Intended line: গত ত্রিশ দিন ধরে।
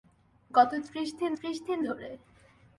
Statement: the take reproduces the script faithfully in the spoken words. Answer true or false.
false